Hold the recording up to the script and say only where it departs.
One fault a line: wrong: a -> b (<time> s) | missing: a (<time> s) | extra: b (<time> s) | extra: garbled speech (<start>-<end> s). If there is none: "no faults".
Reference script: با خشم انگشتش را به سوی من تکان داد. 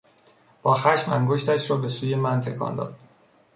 no faults